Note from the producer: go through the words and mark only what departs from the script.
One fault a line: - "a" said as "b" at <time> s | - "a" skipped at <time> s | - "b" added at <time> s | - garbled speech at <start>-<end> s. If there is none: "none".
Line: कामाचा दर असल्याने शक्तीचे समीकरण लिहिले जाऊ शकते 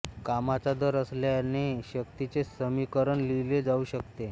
none